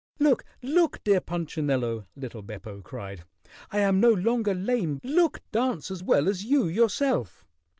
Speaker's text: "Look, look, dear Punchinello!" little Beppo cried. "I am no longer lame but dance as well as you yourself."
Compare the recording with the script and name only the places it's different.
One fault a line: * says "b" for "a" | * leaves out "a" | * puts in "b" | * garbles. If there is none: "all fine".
* says "look" for "but"